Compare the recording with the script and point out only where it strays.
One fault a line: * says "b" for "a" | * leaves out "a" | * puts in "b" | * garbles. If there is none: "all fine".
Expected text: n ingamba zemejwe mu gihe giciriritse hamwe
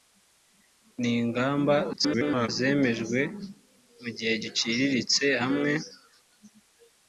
* garbles